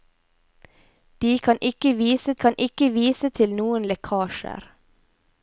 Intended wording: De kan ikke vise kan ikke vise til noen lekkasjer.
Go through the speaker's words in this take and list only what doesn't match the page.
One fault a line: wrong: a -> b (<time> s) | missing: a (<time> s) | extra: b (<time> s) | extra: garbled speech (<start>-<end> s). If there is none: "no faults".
no faults